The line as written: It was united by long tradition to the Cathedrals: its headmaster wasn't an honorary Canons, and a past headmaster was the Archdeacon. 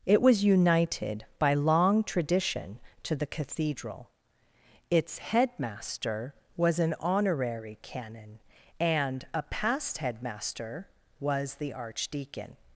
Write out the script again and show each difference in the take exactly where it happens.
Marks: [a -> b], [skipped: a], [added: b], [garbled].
It was united by long tradition to the [Cathedrals: -> Cathedral] its headmaster [wasn't -> was] an honorary [Canons, -> Canon] and a past headmaster was the Archdeacon.